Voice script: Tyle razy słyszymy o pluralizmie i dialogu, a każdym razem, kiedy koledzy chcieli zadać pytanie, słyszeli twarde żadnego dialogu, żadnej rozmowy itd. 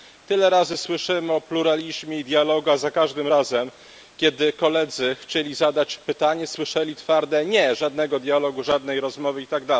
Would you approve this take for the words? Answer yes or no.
no